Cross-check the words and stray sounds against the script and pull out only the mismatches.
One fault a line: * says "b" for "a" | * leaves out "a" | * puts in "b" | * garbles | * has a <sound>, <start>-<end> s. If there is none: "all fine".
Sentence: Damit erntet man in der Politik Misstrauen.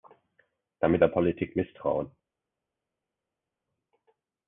* leaves out "erntet man in"